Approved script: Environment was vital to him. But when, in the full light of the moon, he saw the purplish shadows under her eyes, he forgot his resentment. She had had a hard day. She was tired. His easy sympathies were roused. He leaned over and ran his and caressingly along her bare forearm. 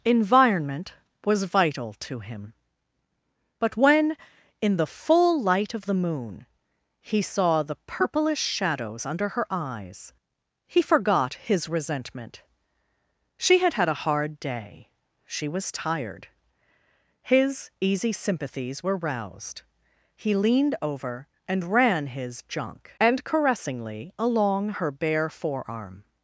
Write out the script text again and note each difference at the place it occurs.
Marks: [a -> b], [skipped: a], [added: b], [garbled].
Environment was vital to him. But when, in the full light of the moon, he saw the purplish shadows under her eyes, he forgot his resentment. She had had a hard day. She was tired. His easy sympathies were roused. He leaned over and ran his [added: junk] and caressingly along her bare forearm.